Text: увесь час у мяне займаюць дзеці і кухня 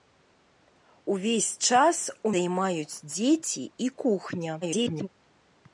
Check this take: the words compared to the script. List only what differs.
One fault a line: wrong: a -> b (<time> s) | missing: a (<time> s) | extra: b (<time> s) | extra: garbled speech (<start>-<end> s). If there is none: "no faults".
missing: мяне (2.3 s)
extra: garbled speech (4.6-5.1 s)